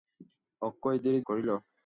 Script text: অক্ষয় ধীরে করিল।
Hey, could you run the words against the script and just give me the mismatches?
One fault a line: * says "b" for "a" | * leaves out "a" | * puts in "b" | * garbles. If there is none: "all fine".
all fine